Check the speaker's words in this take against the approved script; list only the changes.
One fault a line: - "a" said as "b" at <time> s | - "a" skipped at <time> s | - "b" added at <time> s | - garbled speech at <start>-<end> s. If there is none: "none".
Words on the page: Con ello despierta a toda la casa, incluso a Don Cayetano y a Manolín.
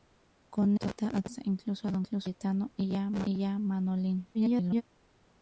- "ello despierta a" skipped at 0.8 s
- garbled speech at 4.3-4.8 s